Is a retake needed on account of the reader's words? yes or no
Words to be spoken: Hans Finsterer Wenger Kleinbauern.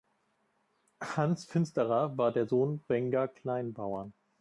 yes